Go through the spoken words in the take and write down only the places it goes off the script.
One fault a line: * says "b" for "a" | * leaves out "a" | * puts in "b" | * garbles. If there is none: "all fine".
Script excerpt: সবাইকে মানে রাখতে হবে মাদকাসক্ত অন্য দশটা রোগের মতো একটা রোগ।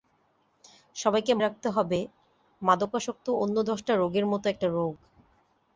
* leaves out "মানে"